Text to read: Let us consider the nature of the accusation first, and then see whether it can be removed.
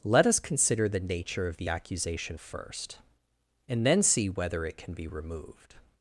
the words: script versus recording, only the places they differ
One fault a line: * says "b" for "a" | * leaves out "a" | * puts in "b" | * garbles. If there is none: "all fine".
all fine